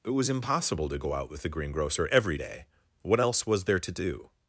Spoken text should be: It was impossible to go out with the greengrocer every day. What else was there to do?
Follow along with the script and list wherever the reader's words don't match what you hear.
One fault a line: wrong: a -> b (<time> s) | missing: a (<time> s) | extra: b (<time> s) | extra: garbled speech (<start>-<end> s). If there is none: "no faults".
no faults